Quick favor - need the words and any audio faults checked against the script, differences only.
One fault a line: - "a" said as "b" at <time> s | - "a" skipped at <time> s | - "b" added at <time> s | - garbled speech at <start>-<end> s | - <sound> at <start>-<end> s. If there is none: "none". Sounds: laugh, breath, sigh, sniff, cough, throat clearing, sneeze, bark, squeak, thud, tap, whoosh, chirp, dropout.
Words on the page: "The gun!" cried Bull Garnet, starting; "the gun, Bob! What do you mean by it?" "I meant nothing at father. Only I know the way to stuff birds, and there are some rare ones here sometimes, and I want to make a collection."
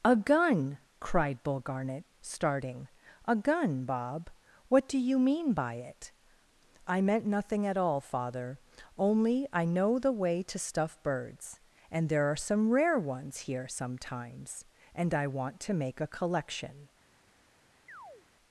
- "The" said as "A" at 0.0 s
- "the" said as "a" at 3.2 s
- "all" added at 7.8 s
- chirp at 17.9-18.3 s